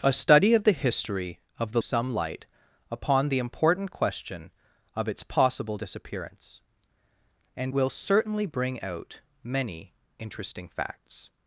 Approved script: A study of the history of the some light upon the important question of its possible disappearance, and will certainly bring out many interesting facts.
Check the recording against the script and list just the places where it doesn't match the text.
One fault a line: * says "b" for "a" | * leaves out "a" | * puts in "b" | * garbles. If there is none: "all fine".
all fine